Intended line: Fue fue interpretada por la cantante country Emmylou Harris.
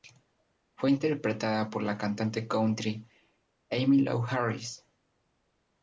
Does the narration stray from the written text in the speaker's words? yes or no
yes